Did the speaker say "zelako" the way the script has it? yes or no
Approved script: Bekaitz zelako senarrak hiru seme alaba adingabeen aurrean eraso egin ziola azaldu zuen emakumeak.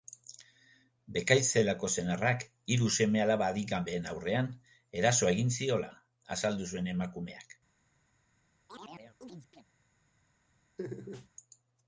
yes